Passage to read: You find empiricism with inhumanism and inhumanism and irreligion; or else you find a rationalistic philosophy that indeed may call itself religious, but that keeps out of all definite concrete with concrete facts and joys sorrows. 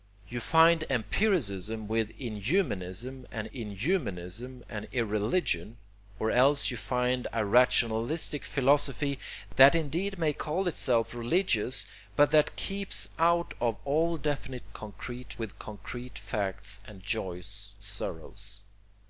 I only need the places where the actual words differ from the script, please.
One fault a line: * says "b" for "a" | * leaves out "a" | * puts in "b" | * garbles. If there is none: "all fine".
all fine